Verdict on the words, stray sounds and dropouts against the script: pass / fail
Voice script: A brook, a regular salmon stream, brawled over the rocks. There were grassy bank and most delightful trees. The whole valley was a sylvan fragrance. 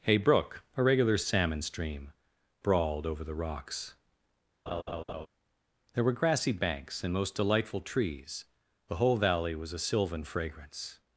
fail